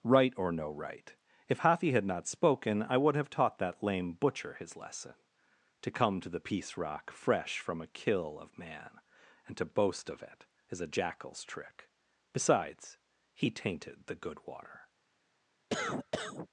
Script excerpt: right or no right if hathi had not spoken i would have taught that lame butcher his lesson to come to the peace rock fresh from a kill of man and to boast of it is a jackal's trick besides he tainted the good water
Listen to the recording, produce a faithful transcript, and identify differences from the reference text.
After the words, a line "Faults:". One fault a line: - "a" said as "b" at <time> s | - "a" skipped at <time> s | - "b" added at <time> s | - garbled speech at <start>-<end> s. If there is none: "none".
right or no right if hathi had not spoken i would have taught that lame butcher his lesson to come to the peace rock fresh from a kill of man and to boast of it is a jackal's trick besides he tainted the good water
Faults:
none